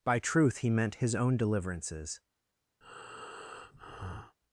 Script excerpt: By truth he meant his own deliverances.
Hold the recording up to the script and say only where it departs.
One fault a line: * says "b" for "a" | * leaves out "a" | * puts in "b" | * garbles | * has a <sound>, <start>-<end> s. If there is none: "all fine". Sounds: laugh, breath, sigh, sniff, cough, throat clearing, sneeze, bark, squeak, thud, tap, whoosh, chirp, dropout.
* has a breath, 2.8-4.4 s